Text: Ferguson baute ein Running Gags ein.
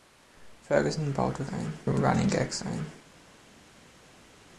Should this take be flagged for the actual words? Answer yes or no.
no